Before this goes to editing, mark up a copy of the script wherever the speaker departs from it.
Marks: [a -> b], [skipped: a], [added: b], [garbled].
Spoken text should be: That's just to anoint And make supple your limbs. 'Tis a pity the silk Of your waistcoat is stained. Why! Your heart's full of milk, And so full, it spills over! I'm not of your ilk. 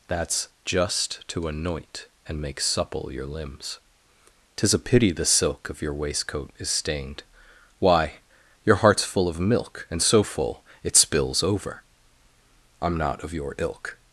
That's just to anoint And make supple your limbs. 'Tis a pity the silk Of your waistcoat is stained. Why! Your heart's full of milk, And so full, it spills over! I'm not of your ilk.